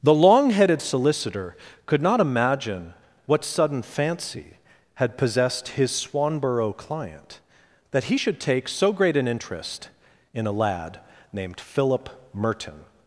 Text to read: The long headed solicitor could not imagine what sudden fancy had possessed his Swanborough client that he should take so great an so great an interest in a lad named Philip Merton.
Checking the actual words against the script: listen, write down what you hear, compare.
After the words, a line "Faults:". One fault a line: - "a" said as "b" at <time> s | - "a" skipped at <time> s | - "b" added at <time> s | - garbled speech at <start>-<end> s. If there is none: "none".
The long headed solicitor could not imagine what sudden fancy had possessed his Swanborough client that he should take so great an interest in a lad named Philip Merton.
Faults:
- "so great an" skipped at 9.3 s